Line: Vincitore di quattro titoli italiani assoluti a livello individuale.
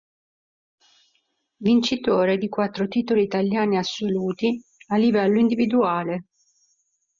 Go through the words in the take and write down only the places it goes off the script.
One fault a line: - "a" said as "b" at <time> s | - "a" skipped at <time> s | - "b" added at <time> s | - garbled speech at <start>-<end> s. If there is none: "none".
none